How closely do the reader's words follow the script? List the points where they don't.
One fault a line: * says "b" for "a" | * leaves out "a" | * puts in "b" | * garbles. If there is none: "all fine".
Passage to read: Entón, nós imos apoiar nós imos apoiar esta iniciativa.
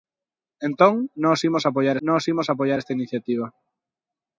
all fine